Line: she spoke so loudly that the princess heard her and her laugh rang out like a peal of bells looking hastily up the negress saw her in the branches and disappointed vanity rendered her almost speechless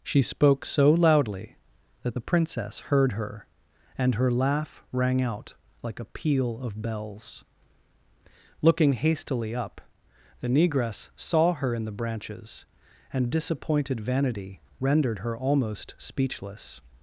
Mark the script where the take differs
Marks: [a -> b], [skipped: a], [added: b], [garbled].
she spoke so loudly that the princess heard her and her laugh rang out like a peal of bells looking hastily up the negress saw her in the branches and disappointed vanity rendered her almost speechless